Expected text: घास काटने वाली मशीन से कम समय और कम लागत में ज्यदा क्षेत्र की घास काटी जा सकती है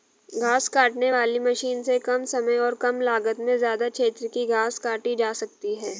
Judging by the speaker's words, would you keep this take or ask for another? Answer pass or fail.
pass